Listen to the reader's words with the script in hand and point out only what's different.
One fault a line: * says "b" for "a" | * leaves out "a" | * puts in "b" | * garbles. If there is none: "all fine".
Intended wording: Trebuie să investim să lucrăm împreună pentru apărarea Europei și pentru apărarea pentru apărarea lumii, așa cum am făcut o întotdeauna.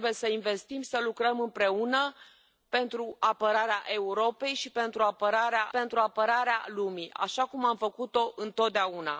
all fine